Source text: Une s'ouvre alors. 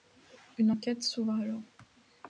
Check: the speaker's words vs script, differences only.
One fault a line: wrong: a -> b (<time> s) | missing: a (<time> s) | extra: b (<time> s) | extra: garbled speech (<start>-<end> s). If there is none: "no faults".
extra: enquête (0.7 s)